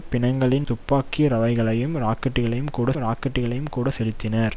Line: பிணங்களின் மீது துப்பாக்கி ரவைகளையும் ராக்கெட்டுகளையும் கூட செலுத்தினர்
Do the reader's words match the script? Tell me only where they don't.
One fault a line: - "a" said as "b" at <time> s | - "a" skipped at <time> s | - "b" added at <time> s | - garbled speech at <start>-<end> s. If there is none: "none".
- "மீது" skipped at 0.7 s
- "ராக்கெட்டுகளையும் கூட" added at 3.0 s